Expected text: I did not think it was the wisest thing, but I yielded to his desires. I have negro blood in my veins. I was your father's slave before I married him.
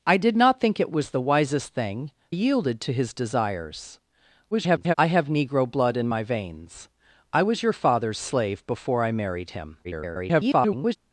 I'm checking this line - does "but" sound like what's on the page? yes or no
no